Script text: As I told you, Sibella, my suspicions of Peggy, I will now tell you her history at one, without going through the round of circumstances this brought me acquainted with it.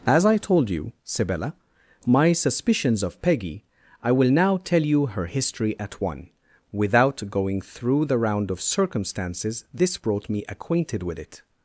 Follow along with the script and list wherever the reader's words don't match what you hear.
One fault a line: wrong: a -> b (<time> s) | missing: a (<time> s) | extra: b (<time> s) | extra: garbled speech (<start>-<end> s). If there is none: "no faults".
no faults